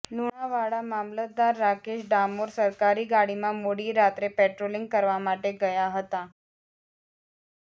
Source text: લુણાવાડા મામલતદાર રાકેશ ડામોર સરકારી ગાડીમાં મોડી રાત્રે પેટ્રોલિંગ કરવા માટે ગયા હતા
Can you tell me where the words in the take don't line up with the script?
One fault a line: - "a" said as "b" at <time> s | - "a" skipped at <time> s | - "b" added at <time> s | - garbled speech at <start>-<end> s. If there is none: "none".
none